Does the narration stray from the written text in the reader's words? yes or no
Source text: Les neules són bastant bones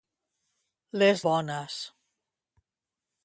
yes